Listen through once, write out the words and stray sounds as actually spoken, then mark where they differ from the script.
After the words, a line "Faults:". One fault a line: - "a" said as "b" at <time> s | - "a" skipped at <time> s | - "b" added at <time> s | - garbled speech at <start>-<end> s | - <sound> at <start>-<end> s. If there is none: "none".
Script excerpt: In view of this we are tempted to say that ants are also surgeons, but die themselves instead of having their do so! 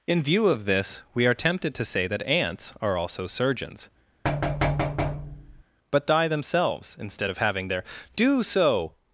In view of this we are tempted to say that ants are also surgeons, but die themselves instead of having their do so!
Faults:
- thud at 4.2-5.6 s